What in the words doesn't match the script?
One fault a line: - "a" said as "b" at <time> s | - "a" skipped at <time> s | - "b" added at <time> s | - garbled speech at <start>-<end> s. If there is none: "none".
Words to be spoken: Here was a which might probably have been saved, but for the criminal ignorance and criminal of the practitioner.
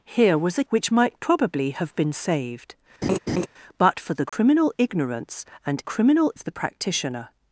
none